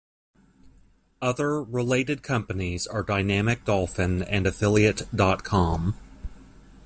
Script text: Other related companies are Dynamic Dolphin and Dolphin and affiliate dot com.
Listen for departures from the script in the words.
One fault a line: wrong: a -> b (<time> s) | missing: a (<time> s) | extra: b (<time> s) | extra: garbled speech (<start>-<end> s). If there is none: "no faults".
missing: Dolphin and (4.5 s)